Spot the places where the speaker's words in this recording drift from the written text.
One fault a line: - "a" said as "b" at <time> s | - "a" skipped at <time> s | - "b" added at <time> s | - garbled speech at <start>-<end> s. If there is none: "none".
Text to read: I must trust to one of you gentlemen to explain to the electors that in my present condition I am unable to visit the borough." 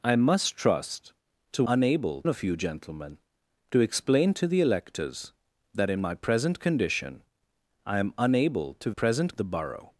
- "one" said as "unable" at 1.7 s
- "visit" said as "present" at 8.9 s